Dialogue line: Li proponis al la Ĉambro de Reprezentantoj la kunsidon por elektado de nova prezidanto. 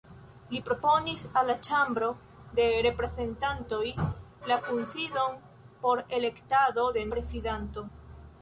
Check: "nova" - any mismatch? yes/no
yes